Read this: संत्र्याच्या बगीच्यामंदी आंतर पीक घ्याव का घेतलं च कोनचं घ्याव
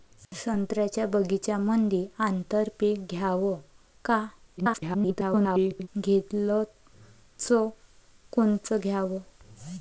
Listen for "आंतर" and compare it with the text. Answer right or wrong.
right